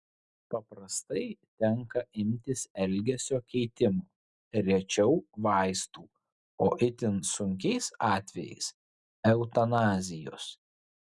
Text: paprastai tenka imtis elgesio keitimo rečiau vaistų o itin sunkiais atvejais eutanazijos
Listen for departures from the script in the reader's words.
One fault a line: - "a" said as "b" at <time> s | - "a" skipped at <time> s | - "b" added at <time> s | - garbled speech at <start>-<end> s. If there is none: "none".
none